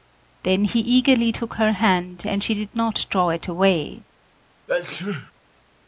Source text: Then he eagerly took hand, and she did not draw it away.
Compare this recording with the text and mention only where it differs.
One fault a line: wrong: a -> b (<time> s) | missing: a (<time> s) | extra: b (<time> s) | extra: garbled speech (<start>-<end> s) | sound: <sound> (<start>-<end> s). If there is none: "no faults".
extra: her (1.5 s)
sound: sneeze (4.7-5.3 s)